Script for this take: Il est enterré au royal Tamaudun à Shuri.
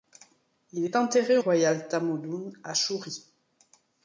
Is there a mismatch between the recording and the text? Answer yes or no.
no